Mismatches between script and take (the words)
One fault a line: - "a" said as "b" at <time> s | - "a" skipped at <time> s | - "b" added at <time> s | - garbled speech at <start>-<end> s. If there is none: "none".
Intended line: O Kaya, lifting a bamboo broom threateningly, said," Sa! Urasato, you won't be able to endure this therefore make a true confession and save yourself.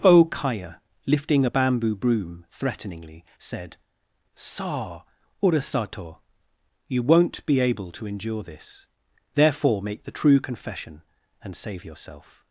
- "a" said as "the" at 10.0 s